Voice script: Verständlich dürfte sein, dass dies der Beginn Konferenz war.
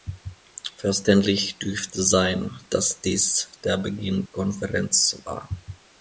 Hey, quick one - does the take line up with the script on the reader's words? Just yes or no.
yes